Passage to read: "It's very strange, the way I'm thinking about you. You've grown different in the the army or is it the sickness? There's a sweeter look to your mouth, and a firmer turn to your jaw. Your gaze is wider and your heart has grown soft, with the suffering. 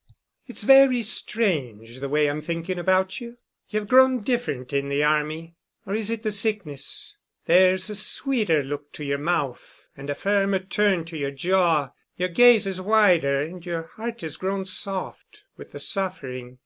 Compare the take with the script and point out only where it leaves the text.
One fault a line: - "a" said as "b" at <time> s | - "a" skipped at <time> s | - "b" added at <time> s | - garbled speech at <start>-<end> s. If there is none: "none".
- "the" skipped at 5.0 s